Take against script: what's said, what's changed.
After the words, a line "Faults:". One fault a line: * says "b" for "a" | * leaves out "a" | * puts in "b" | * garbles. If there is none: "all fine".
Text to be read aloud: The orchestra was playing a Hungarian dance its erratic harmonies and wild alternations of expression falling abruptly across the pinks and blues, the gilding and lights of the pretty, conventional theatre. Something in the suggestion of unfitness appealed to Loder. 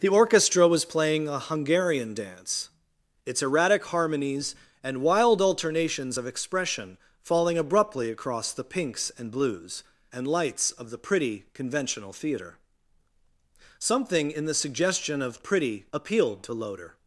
The orchestra was playing a Hungarian dance its erratic harmonies and wild alternations of expression falling abruptly across the pinks and blues, and lights of the pretty, conventional theatre. Something in the suggestion of pretty appealed to Loder.
Faults:
* leaves out "the gilding"
* says "pretty" for "unfitness"